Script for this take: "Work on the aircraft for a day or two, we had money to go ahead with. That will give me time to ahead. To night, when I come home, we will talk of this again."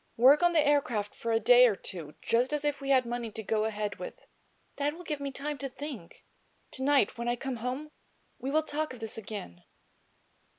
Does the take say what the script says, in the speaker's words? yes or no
no